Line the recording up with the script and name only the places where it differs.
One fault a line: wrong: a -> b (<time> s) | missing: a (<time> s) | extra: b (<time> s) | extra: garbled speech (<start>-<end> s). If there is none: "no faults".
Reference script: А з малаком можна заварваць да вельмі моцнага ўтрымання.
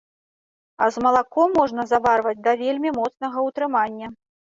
no faults